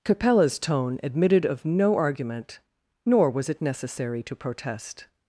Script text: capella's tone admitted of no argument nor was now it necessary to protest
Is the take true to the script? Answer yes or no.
no